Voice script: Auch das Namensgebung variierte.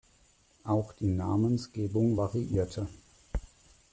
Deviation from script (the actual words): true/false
true